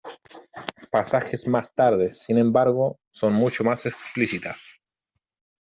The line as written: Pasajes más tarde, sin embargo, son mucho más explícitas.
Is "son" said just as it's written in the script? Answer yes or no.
yes